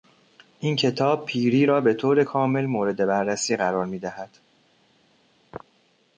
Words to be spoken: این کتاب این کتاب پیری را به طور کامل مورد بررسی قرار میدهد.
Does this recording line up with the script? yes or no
no